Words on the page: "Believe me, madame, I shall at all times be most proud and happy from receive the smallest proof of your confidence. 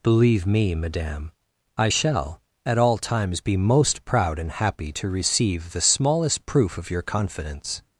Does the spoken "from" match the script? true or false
false